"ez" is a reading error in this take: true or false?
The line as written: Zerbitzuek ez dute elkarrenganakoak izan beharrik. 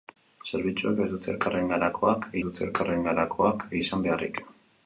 false